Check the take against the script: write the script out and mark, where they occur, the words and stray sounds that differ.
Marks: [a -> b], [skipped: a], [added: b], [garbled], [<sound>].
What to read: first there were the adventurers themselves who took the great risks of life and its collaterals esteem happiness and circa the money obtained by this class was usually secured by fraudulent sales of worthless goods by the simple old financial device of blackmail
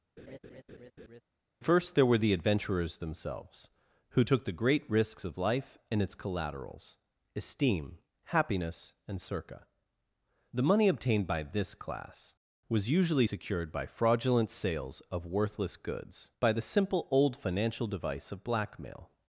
[laugh] first there were the adventurers themselves who took the great risks of life and its collaterals esteem happiness and circa the money obtained by this class was usually secured by fraudulent sales of worthless goods by the simple old financial device of blackmail